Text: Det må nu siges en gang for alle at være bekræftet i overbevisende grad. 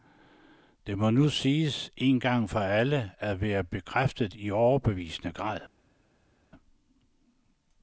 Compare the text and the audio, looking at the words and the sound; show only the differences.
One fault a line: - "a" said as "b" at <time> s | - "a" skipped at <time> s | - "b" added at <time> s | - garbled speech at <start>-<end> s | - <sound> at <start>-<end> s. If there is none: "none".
none